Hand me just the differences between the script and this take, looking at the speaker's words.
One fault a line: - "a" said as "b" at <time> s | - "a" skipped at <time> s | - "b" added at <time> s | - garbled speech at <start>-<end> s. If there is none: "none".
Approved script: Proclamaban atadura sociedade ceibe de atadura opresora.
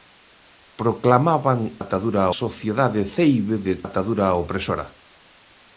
none